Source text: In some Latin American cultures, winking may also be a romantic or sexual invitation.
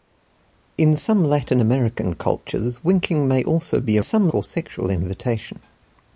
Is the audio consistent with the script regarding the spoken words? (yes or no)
no